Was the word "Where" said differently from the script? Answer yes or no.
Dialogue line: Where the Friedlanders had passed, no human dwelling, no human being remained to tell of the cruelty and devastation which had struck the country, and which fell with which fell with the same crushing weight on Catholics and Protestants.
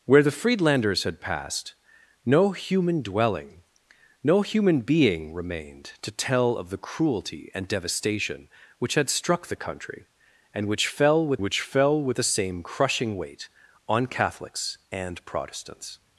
no